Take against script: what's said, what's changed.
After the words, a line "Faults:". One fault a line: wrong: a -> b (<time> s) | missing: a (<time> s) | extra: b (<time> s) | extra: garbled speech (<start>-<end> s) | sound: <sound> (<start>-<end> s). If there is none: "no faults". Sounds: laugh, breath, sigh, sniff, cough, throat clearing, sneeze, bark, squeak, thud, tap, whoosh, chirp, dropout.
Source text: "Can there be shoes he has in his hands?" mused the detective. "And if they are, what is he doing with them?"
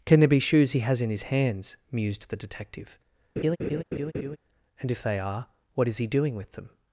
"Can there be shoes he has in his hands?" mused the detective. "And if they are, what is he doing with them?"
Faults:
sound: laugh (3.4-4.4 s)